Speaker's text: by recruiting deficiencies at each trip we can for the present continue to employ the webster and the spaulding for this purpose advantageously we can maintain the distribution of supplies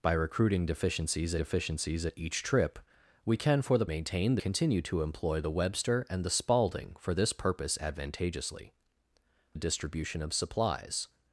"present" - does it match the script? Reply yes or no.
no